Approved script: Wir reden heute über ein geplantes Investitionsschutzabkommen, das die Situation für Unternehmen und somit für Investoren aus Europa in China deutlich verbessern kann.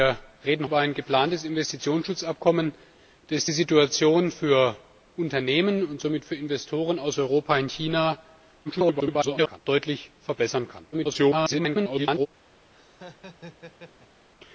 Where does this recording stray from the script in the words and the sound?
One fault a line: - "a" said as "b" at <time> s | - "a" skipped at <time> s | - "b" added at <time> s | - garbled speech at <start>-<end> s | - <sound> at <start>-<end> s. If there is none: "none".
- "heute" skipped at 0.7 s
- garbled speech at 8.6-9.6 s
- garbled speech at 10.9-12.3 s
- laugh at 12.7-14.3 s